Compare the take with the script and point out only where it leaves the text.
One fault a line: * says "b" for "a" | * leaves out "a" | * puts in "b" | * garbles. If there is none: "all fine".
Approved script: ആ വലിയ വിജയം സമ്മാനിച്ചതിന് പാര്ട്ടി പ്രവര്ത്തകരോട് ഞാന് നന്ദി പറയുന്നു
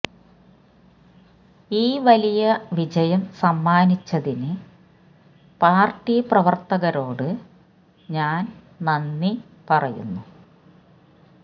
* says "ഈ" for "ആ"